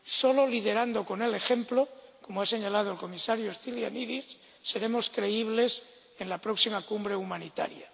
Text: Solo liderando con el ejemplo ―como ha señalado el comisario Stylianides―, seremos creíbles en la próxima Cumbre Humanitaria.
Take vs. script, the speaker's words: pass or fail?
pass